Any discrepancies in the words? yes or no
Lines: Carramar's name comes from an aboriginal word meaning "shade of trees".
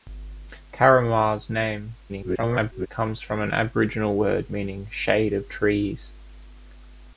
yes